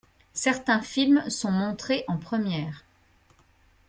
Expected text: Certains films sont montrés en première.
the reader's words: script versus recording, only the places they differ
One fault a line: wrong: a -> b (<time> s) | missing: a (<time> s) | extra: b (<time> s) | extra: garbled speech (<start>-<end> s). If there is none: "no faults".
no faults